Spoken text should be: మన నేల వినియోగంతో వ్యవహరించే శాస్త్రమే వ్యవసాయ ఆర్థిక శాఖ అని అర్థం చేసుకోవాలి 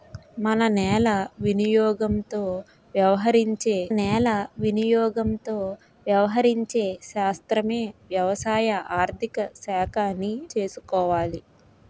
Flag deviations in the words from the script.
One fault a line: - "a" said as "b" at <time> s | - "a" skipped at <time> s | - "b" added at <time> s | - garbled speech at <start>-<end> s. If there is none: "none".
- "నేల వినియోగంతో వ్యవహరించే" added at 4.0 s
- "అర్థం" skipped at 10.3 s